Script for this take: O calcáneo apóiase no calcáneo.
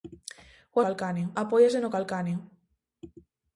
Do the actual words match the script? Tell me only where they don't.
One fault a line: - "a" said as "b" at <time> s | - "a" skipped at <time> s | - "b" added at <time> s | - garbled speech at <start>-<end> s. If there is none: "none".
none